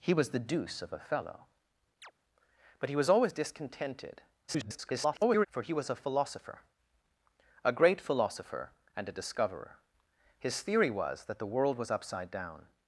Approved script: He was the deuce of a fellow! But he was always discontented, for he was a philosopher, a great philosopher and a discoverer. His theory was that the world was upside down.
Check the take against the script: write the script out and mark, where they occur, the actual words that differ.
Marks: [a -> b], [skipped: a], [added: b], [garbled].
He was the deuce of a fellow! But he was always discontented, [garbled] for he was a philosopher, a great philosopher and a discoverer. His theory was that the world was upside down.